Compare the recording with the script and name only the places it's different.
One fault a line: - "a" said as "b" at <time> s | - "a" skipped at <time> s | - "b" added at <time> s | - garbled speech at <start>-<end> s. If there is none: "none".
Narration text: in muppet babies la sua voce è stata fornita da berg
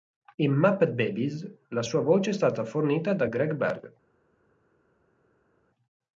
- "greg" added at 3.2 s